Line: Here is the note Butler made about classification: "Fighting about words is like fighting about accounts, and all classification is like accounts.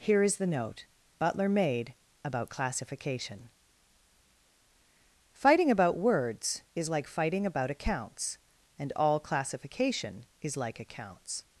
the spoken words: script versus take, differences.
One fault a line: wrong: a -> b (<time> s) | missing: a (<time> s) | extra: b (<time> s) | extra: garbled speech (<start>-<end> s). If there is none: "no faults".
no faults